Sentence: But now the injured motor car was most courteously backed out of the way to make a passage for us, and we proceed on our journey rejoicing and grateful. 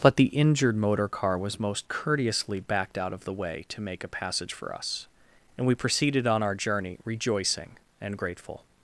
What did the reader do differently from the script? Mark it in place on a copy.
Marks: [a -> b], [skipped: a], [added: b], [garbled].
But [skipped: now] the injured motor car was most courteously backed out of the way to make a passage for us, and we [proceed -> proceeded] on our journey rejoicing and grateful.